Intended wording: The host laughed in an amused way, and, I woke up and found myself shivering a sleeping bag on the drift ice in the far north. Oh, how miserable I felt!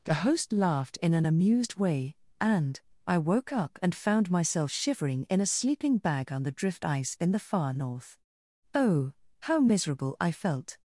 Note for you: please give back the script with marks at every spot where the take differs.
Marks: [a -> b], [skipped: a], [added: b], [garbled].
The host laughed in an amused way, and, I woke up and found myself shivering [added: in] a sleeping bag on the drift ice in the far north. Oh, how miserable I felt!